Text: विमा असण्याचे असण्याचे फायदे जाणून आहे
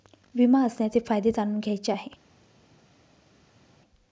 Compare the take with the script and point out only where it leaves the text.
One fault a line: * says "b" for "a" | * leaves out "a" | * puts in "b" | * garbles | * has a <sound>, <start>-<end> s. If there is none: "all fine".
* leaves out "असण्याचे"
* puts in "घ्यायचे"